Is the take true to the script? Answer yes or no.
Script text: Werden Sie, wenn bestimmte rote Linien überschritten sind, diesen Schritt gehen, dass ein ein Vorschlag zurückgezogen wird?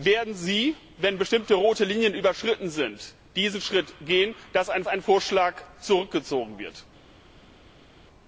yes